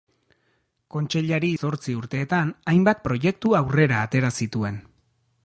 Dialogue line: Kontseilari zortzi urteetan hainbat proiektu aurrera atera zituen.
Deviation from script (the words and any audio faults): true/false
false